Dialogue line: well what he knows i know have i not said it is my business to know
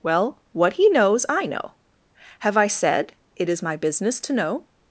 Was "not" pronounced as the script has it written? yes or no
no